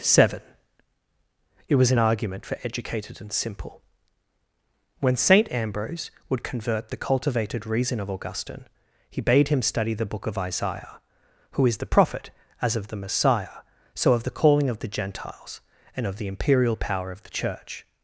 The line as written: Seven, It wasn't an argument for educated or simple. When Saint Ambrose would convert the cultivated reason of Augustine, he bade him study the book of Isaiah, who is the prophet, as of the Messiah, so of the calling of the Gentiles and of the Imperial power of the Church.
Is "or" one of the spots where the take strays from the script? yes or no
yes